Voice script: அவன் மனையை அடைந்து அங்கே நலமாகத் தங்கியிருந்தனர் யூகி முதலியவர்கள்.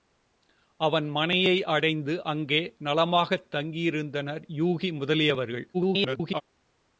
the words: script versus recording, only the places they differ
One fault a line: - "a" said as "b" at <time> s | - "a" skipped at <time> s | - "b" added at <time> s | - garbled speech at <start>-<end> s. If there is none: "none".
- garbled speech at 5.7-6.4 s